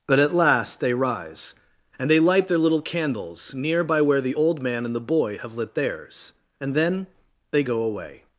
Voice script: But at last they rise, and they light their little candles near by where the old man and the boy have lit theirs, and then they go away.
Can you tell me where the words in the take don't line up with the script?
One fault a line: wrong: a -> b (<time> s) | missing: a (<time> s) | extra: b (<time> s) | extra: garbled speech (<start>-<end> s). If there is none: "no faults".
no faults